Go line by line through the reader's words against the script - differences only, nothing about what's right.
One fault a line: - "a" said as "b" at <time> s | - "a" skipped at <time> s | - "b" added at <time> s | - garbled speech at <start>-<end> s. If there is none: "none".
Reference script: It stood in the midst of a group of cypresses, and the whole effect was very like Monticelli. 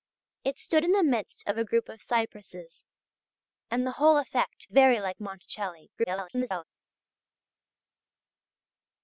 - "was" skipped at 4.7 s
- garbled speech at 6.0-6.6 s